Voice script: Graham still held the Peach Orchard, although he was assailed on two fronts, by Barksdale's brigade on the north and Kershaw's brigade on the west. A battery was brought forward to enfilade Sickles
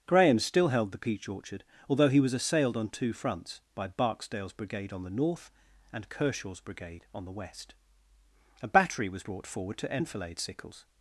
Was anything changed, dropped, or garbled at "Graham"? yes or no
no